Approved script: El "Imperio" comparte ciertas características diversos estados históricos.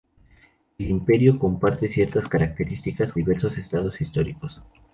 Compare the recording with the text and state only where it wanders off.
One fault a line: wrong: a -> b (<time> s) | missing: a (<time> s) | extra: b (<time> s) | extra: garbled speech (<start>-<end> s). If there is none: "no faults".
no faults